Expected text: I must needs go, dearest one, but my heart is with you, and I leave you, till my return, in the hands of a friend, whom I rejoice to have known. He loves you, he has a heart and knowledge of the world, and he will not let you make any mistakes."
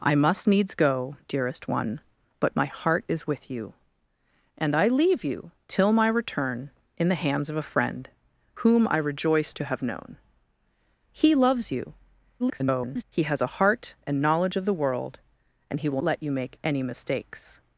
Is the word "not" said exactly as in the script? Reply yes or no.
no